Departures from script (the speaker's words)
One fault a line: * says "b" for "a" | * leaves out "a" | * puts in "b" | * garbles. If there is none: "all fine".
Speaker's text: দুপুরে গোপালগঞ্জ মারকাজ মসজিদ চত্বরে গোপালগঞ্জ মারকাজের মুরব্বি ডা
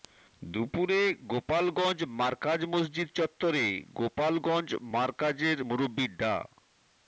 all fine